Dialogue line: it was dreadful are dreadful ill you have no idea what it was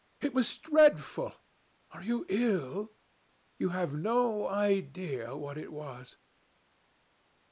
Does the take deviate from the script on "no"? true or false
false